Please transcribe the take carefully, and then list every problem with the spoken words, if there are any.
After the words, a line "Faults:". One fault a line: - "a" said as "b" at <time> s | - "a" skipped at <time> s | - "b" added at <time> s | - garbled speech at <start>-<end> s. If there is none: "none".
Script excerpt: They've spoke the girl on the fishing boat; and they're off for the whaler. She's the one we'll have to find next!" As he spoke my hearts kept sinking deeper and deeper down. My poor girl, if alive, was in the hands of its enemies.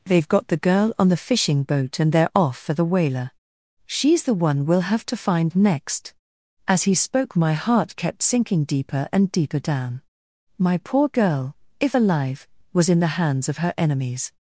They've got the girl on the fishing boat; and they're off for the whaler. She's the one we'll have to find next!" As he spoke my heart kept sinking deeper and deeper down. My poor girl, if alive, was in the hands of her enemies.
Faults:
- "spoke" said as "got" at 0.3 s
- "hearts" said as "heart" at 7.5 s
- "its" said as "her" at 13.6 s